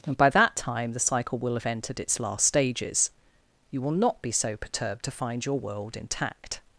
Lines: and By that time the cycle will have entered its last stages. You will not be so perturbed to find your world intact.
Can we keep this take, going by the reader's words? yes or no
yes